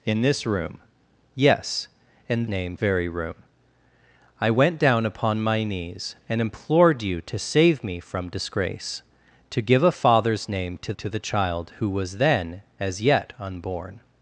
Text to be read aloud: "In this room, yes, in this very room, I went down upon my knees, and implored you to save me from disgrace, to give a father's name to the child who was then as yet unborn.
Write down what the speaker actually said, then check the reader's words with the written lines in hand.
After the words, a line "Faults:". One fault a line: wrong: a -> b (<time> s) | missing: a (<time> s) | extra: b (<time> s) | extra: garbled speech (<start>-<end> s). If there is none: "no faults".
"In this room, yes, in name very room, I went down upon my knees, and implored you to save me from disgrace, to give a father's name to to the child who was then as yet unborn.
Faults:
wrong: this -> name (2.5 s)
extra: to (10.9 s)